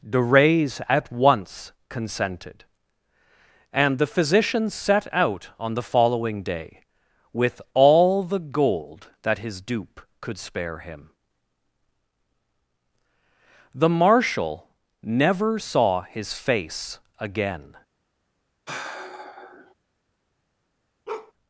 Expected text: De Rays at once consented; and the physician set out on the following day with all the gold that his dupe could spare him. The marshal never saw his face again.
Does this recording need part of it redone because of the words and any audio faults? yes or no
yes